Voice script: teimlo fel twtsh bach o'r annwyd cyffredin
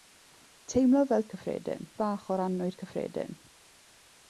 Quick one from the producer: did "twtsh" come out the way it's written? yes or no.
no